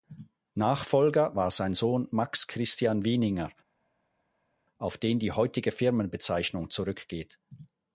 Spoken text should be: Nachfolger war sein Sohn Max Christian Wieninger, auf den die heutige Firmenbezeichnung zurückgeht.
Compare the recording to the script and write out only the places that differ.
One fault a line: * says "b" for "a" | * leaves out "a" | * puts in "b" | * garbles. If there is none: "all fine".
all fine